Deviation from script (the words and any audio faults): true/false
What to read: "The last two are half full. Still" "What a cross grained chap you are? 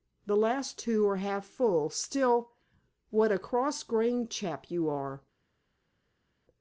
false